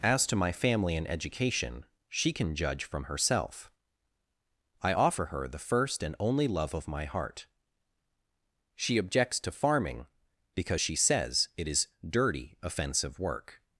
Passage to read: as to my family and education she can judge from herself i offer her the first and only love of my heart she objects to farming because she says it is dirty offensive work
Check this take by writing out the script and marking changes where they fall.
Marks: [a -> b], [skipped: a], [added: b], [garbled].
as to my family and education she can judge from herself i offer her the first and only love of my heart she objects to farming because she says it is dirty offensive work